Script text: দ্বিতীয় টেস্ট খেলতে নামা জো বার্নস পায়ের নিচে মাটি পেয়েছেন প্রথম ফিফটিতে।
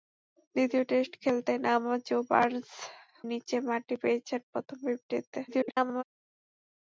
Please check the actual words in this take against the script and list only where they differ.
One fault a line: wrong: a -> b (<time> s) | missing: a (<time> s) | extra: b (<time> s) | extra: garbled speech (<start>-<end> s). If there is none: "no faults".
missing: পায়ের (2.7 s)
extra: garbled speech (5.5-6.0 s)